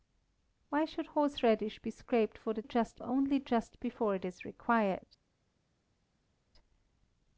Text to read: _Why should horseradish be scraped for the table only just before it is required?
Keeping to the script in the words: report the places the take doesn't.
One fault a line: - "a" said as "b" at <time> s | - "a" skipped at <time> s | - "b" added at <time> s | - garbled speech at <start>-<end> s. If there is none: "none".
- "table" said as "just" at 2.6 s